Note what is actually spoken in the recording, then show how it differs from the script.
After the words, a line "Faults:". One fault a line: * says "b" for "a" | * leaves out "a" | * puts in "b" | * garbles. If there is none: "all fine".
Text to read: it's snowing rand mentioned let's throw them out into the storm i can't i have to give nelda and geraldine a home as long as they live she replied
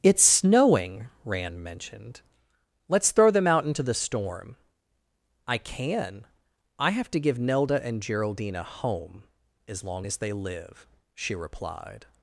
it's snowing rand mentioned let's throw them out into the storm i can i have to give nelda and geraldine a home as long as they live she replied
Faults:
* says "can" for "can't"